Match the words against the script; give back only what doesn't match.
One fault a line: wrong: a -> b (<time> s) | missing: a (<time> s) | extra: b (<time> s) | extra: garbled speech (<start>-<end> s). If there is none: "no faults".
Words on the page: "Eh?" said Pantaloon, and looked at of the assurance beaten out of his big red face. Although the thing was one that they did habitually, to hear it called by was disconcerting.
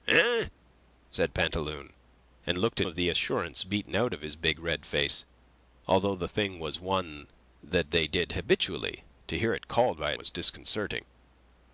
no faults